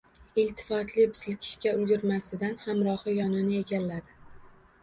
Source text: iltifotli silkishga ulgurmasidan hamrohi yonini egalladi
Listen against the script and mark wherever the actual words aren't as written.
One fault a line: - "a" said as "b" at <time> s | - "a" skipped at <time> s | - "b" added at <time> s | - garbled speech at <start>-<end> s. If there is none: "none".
none